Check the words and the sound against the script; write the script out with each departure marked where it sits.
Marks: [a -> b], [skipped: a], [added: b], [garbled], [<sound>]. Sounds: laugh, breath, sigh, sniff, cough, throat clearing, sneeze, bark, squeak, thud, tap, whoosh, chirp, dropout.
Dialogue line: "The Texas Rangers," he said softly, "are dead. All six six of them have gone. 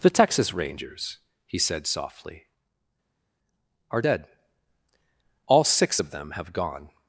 "The Texas Rangers," he said softly, "are dead. All six [skipped: six] of them have gone.